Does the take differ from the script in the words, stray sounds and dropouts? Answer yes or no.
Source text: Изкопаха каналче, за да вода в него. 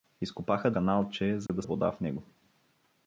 yes